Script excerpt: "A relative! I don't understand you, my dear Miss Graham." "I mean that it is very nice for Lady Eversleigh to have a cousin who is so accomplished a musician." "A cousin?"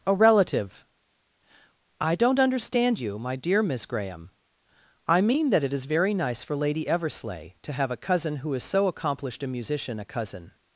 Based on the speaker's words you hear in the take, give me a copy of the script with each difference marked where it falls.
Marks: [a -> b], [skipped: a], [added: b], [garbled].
"A relative! I don't understand you, my dear Miss Graham." "I mean that it is very nice for Lady Eversleigh to have a cousin who is so accomplished a musician." "A cousin?"